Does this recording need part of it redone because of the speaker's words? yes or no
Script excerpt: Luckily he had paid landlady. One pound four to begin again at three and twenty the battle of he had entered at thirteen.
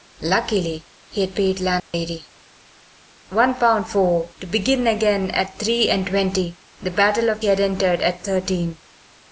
no